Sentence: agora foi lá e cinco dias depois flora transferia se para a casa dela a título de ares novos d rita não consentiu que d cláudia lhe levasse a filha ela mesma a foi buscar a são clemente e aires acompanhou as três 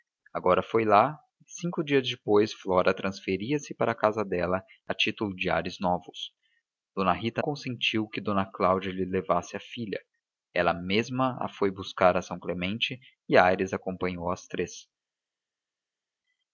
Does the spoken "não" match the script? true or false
false